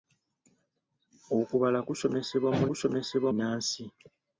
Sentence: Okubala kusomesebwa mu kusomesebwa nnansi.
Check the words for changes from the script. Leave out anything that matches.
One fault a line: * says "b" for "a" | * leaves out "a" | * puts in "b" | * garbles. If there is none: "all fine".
all fine